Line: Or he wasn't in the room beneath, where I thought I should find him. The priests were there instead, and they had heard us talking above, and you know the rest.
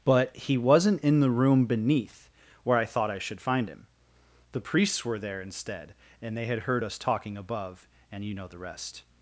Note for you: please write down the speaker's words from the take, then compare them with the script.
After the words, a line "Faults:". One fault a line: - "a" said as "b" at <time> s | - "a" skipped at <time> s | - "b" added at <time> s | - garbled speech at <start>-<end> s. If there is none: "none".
But he wasn't in the room beneath, where I thought I should find him. The priests were there instead, and they had heard us talking above, and you know the rest.
Faults:
- "Or" said as "But" at 0.0 s